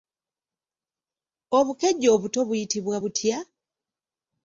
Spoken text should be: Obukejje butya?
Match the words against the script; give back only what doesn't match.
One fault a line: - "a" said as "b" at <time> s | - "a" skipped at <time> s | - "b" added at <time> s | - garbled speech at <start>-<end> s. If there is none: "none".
- "obuto buyitibwa" added at 2.1 s